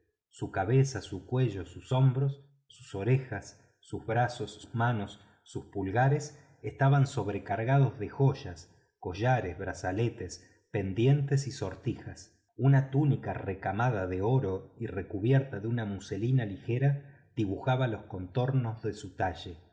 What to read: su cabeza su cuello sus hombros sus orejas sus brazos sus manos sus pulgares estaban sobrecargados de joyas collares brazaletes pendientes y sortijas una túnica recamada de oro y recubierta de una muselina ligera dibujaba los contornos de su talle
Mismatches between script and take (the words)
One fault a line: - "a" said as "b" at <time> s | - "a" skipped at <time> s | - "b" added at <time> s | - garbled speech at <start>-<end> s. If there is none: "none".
none